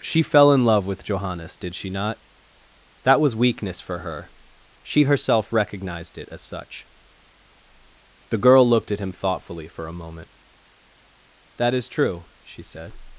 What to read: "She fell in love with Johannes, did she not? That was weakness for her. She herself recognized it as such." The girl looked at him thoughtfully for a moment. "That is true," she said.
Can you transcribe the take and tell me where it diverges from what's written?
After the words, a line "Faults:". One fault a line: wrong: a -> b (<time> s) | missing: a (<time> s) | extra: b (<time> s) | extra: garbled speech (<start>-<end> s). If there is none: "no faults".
"She fell in love with Johannes, did she not? That was weakness for her. She herself recognized it as such." The girl looked at him thoughtfully for a moment. "That is true," she said.
Faults:
no faults